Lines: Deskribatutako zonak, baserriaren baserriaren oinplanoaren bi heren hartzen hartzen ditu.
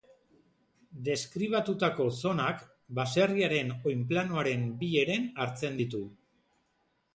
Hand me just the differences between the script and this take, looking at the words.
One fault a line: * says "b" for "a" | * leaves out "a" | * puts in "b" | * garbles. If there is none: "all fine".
* leaves out "baserriaren"
* leaves out "hartzen"